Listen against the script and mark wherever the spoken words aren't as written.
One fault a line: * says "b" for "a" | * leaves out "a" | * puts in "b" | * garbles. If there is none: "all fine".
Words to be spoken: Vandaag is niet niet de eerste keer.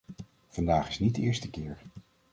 * leaves out "niet"